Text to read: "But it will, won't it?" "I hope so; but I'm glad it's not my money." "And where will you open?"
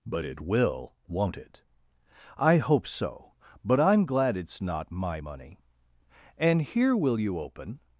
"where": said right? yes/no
no